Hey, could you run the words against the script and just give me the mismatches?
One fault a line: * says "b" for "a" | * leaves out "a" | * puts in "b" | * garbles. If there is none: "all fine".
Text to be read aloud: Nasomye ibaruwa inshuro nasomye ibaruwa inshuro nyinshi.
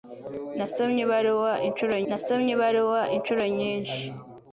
all fine